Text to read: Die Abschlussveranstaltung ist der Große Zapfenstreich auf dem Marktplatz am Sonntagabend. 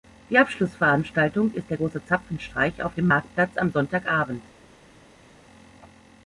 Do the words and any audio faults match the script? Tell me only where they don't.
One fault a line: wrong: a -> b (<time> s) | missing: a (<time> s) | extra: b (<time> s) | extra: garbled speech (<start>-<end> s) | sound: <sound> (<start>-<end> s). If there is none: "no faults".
no faults